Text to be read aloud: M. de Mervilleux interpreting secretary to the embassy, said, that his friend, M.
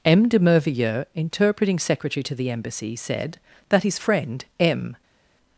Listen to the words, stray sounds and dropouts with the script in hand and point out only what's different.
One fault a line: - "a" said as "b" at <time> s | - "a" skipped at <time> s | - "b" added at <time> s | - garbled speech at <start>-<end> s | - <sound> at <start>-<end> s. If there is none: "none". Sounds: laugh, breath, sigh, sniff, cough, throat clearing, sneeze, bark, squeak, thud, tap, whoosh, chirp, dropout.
none